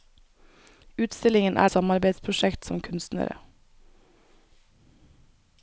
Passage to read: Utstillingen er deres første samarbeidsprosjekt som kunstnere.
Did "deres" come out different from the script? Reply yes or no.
yes